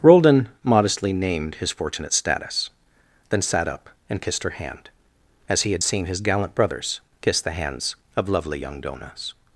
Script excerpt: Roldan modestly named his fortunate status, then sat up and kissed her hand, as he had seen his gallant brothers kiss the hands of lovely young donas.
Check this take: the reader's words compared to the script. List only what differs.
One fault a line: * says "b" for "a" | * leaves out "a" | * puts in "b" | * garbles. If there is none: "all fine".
all fine